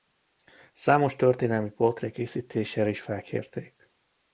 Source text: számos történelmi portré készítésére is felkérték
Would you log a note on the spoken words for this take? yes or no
no